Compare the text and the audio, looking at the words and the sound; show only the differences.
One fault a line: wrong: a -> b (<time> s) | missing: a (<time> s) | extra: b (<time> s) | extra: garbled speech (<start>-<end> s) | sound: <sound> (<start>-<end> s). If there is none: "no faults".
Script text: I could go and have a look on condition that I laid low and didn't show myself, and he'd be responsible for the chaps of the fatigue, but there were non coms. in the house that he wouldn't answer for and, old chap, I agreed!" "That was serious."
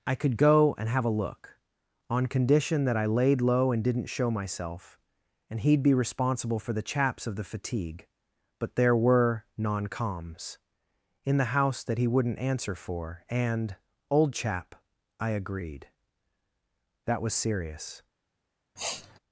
sound: sniff (18.8-19.2 s)